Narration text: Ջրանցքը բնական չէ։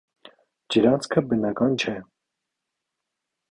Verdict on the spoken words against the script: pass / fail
pass